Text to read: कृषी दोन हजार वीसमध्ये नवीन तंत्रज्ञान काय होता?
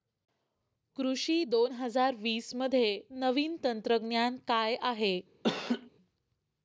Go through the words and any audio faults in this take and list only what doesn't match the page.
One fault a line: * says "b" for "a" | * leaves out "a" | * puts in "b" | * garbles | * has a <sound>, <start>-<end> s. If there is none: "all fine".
* says "आहे" for "होता"
* has a laugh, 5.4-5.9 s